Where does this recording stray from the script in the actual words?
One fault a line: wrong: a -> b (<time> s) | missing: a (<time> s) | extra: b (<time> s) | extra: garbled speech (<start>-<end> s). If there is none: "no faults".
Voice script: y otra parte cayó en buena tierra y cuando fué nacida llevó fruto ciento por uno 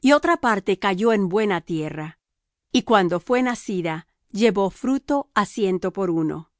extra: á (5.3 s)